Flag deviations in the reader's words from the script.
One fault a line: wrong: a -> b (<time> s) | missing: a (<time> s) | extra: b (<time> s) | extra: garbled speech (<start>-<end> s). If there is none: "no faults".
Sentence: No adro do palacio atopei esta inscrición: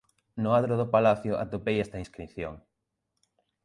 no faults